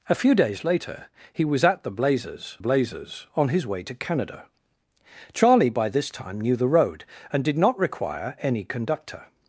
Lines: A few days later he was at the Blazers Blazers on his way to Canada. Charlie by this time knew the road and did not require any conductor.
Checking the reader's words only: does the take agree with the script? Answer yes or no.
yes